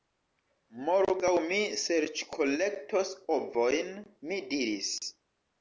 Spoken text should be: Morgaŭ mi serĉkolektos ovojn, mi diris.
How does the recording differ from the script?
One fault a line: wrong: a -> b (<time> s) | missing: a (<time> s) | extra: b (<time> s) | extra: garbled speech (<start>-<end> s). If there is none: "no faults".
no faults